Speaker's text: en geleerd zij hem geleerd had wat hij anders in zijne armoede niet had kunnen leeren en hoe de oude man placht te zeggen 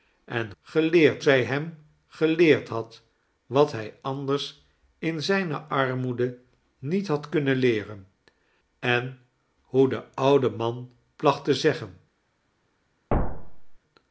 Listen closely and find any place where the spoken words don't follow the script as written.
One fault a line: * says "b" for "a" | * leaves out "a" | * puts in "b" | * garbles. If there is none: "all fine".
all fine